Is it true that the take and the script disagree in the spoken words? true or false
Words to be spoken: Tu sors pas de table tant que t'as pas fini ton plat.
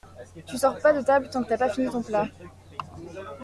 false